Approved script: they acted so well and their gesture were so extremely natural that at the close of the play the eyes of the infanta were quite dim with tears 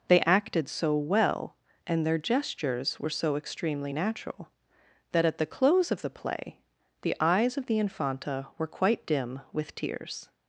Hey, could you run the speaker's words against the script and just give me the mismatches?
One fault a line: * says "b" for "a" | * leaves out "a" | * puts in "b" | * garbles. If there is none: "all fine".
* says "gestures" for "gesture"